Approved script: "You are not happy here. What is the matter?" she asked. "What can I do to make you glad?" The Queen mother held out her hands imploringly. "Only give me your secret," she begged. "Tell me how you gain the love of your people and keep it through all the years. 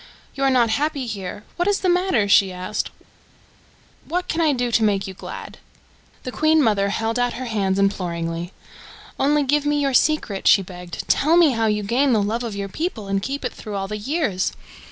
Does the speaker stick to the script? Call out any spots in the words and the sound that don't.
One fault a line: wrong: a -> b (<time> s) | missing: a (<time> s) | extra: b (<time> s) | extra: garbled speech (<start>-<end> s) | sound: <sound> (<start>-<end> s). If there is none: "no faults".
no faults